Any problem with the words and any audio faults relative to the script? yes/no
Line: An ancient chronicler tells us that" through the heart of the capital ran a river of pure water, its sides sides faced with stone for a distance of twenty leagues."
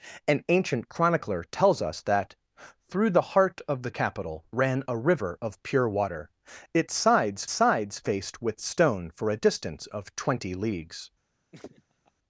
yes